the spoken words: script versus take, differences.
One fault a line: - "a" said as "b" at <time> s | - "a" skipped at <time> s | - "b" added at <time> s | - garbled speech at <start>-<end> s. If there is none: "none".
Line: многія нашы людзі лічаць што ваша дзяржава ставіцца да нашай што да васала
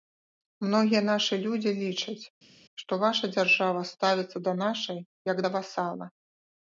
- "што" said as "як" at 5.3 s